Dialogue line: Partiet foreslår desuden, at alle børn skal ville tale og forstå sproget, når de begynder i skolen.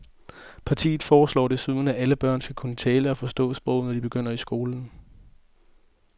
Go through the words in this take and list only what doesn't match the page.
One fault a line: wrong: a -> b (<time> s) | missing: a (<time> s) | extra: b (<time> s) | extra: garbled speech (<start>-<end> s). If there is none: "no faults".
wrong: ville -> kunne (2.5 s)